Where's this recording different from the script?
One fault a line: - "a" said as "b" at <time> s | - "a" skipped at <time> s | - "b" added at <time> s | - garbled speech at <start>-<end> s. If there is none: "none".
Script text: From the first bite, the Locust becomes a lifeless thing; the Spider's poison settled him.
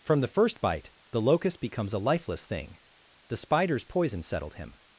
none